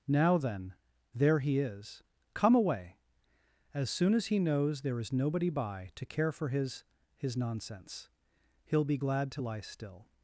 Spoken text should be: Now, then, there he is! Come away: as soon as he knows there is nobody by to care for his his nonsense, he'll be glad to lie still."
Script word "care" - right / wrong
right